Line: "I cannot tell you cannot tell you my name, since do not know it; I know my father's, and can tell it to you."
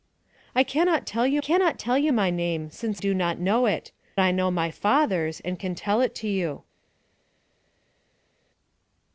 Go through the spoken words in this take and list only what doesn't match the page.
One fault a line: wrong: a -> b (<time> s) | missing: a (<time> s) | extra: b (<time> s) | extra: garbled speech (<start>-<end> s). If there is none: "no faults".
no faults